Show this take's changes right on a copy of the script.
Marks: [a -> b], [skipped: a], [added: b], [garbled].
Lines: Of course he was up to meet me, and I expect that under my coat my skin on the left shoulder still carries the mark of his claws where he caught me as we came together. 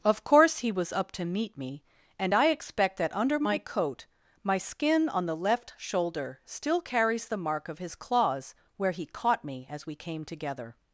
Of course he was up to meet me, and I expect that under my coat my skin on the left shoulder still carries the mark of his claws where he caught me as we came together.